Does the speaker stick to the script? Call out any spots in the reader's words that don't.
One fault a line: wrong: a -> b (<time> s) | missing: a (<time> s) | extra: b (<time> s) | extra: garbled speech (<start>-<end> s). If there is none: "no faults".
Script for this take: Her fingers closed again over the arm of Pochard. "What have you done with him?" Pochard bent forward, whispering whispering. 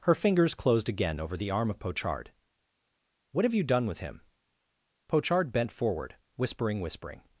no faults